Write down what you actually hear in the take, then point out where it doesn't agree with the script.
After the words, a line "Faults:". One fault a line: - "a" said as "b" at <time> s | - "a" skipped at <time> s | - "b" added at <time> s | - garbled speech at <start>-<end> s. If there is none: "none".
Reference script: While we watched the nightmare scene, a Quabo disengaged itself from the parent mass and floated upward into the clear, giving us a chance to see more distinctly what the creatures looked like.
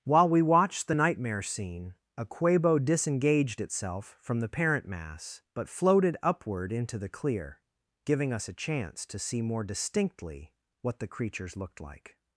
While we watched the nightmare scene, a Quabo disengaged itself from the parent mass but floated upward into the clear, giving us a chance to see more distinctly what the creatures looked like.
Faults:
- "and" said as "but" at 5.6 s